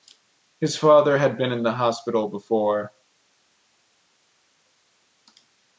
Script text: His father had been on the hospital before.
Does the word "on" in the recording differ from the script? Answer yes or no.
yes